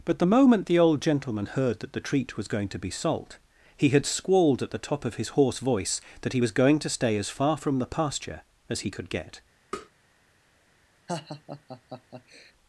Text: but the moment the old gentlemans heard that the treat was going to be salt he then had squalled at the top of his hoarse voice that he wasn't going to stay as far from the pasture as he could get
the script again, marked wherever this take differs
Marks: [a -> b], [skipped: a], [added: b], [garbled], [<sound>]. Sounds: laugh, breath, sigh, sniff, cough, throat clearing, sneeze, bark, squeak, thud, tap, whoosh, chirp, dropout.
but the moment the old [gentlemans -> gentleman] heard that the treat was going to be salt he [skipped: then] had squalled at the top of his hoarse voice that he [wasn't -> was] going to stay as far from the pasture as he could get [tap] [laugh]